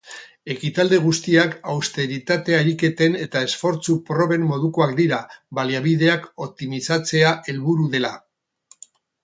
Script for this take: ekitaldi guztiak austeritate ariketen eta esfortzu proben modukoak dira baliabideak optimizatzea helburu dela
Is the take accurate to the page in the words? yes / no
yes